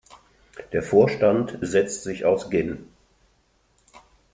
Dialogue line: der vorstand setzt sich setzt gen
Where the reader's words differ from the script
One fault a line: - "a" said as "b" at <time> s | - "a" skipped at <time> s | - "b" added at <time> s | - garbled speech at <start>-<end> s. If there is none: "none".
- "setzt" said as "aus" at 2.2 s